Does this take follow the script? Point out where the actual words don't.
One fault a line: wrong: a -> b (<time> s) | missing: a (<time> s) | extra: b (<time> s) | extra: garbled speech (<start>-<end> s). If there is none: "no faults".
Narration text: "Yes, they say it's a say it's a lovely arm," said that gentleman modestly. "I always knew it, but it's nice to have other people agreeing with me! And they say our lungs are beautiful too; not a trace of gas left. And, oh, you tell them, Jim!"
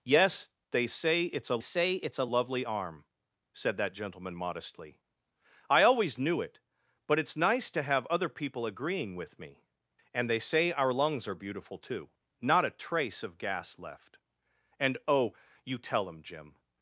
no faults